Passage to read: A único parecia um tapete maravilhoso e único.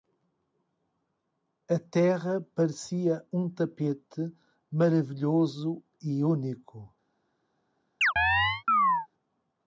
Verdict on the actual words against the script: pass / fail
fail